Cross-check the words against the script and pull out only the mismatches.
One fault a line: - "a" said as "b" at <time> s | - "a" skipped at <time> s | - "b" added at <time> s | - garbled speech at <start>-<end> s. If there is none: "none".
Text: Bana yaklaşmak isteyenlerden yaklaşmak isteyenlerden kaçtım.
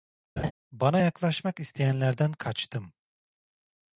- "yaklaşmak isteyenlerden" skipped at 2.3 s